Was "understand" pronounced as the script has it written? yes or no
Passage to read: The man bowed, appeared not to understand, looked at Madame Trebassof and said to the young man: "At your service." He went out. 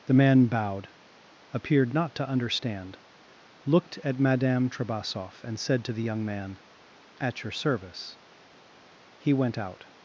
yes